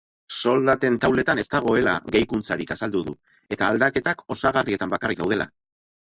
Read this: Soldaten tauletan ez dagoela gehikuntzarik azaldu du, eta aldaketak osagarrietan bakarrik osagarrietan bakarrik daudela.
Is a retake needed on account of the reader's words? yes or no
yes